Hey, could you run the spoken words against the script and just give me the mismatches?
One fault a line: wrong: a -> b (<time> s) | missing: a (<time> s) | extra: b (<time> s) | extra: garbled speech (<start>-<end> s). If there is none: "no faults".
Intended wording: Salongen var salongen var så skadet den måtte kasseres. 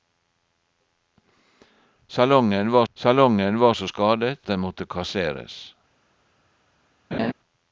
no faults